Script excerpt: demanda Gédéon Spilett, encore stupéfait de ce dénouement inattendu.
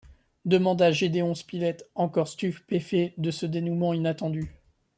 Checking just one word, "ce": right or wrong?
right